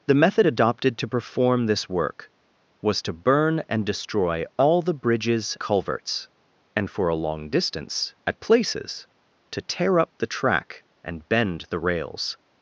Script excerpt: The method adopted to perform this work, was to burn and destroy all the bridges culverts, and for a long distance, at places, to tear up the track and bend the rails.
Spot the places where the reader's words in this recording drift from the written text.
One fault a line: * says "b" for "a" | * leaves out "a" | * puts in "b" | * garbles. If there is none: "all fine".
all fine